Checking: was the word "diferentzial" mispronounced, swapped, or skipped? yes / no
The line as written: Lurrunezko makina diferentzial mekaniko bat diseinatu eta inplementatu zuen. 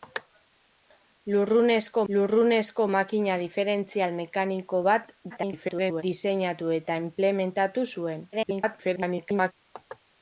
no